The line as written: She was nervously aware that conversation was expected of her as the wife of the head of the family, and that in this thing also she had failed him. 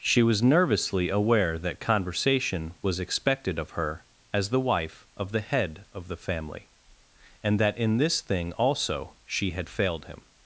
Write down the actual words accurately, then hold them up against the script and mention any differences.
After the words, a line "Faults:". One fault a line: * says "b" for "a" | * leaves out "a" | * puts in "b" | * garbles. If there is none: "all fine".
She was nervously aware that conversation was expected of her as the wife of the head of the family, and that in this thing also she had failed him.
Faults:
all fine